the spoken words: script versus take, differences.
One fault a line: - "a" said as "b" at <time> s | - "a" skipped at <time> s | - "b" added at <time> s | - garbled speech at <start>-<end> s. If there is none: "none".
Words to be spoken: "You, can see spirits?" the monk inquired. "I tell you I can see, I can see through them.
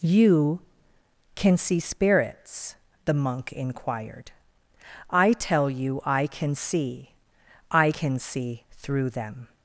none